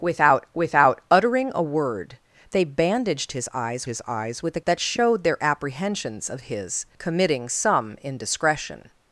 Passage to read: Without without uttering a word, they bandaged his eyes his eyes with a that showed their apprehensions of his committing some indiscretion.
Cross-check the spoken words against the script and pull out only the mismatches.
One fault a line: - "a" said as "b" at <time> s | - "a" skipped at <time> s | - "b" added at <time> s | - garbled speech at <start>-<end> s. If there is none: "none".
none